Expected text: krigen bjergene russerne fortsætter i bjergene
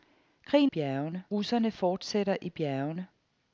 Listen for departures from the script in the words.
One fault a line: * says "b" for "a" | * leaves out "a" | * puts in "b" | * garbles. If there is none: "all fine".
all fine